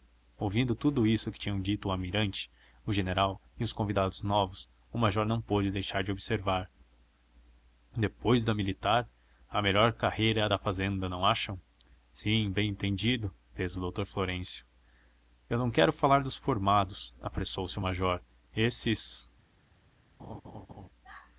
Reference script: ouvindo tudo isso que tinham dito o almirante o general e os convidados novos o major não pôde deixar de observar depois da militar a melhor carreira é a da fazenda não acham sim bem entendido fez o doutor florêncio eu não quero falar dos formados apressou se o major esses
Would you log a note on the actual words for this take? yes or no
no